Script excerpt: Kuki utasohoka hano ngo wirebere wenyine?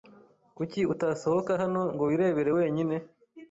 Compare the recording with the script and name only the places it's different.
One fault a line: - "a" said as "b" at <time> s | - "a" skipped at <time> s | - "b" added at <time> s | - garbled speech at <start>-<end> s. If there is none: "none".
none